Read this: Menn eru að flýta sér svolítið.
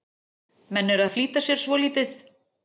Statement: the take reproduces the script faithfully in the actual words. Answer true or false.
true